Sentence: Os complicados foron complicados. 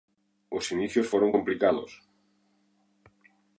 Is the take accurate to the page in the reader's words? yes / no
no